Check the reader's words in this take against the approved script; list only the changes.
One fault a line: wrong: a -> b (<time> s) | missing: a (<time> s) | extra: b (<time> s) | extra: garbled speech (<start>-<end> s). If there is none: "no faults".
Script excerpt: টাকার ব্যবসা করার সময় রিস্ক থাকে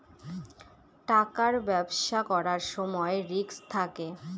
no faults